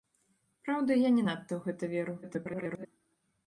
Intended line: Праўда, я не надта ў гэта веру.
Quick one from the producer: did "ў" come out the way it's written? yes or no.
yes